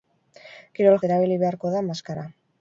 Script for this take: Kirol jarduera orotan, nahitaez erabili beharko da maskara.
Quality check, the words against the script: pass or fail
fail